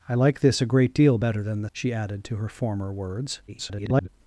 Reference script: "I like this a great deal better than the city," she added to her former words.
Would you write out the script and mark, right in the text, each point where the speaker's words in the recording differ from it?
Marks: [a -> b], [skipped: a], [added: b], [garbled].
"I like this a great deal better than the [skipped: city,"] she added to her former words. [garbled]